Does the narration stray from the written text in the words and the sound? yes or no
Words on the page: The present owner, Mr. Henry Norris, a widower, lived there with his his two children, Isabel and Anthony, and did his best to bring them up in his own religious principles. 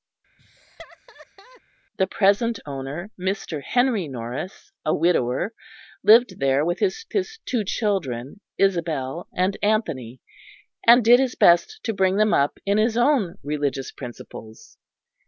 yes